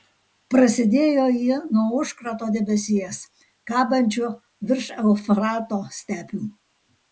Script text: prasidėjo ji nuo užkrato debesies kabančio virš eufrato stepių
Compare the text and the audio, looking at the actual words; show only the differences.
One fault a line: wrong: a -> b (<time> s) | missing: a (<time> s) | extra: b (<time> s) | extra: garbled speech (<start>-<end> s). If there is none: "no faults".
no faults